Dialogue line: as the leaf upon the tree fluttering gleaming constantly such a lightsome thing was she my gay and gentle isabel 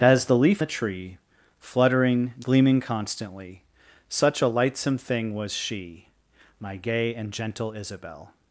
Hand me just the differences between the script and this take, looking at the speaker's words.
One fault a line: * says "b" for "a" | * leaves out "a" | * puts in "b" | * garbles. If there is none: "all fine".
* leaves out "upon"